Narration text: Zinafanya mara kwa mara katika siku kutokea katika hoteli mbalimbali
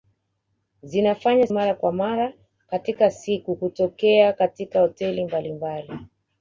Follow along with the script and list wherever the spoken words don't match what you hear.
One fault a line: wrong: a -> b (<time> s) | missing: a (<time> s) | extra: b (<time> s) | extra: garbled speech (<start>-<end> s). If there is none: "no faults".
no faults